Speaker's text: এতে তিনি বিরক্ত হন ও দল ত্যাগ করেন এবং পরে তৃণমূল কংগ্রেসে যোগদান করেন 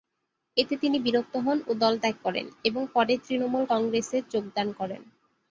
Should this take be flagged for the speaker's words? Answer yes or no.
no